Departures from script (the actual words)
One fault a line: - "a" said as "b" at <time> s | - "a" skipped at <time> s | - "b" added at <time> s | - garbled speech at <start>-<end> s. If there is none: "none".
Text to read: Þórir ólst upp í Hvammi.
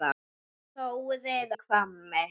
- "ólst upp" skipped at 1.5 s